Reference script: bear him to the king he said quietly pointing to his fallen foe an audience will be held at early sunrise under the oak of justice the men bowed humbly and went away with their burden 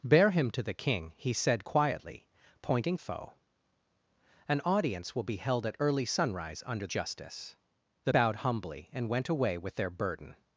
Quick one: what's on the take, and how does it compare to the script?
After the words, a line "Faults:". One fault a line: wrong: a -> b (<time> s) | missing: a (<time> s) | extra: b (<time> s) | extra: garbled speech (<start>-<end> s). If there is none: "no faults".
bear him to the king he said quietly pointing foe an audience will be held at early sunrise under justice the bowed humbly and went away with their burden
Faults:
missing: to his fallen (3.0 s)
missing: the oak of (6.9 s)
missing: men (8.1 s)